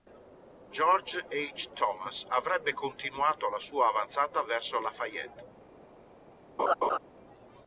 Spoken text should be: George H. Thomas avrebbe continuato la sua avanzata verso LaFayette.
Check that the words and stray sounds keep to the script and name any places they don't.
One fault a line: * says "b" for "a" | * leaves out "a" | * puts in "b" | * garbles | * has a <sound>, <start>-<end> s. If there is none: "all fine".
* has a laugh, 6.6-7.0 s